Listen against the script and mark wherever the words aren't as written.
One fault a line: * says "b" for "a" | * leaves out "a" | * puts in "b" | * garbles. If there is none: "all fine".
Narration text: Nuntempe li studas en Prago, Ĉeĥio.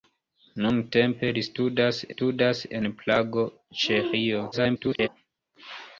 * puts in "studas"
* garbles